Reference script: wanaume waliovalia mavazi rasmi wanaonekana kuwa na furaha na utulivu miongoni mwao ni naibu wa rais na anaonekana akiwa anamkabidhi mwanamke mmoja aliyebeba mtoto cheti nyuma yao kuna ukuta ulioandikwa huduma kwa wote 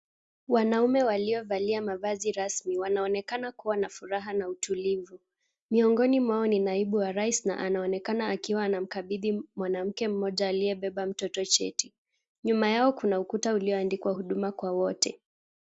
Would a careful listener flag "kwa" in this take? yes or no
no